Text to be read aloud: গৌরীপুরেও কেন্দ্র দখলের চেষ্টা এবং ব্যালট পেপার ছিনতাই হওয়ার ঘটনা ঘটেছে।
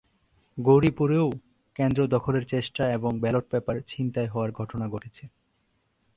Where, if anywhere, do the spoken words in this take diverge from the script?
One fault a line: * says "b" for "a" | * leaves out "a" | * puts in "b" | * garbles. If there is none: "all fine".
all fine